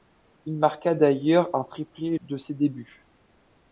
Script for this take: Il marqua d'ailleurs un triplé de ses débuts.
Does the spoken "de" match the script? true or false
true